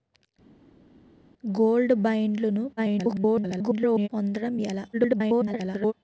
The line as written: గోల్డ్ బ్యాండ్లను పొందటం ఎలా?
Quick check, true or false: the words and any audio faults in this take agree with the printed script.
false